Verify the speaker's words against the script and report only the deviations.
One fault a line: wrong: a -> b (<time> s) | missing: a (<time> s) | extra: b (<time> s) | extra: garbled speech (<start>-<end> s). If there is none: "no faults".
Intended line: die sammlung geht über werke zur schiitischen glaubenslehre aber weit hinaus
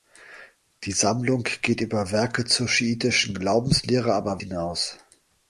missing: weit (4.4 s)